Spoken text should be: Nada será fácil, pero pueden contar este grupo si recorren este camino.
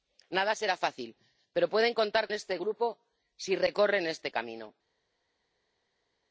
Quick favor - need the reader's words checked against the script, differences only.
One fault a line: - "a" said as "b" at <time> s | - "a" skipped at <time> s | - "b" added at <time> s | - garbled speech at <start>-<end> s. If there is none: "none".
none